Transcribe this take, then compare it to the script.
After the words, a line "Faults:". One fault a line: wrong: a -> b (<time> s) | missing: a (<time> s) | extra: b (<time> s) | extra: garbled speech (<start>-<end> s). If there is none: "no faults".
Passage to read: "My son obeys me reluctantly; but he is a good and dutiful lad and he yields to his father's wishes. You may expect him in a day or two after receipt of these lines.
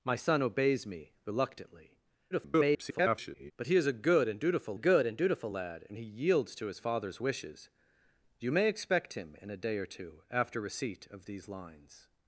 "My son obeys me reluctantly; [garbled] but he is a good and dutiful good and dutiful lad and he yields to his father's wishes. You may expect him in a day or two after receipt of these lines.
Faults:
extra: garbled speech (2.3-3.5 s)
extra: good and dutiful (4.7 s)